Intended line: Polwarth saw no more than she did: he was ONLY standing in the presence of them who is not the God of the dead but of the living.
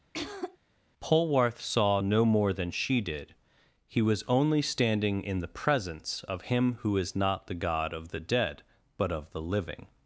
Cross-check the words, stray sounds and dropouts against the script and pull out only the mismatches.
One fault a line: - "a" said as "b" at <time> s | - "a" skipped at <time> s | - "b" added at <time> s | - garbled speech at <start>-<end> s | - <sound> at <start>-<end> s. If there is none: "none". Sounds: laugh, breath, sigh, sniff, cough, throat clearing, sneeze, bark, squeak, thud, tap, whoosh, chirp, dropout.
- throat clearing at 0.1-0.6 s
- "them" said as "him" at 6.4 s